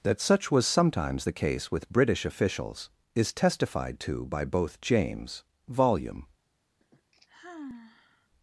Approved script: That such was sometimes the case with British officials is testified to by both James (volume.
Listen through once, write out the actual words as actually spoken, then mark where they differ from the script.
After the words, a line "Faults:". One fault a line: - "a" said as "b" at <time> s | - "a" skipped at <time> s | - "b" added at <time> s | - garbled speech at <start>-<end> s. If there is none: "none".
That such was sometimes the case with British officials is testified to by both James (volume.
Faults:
none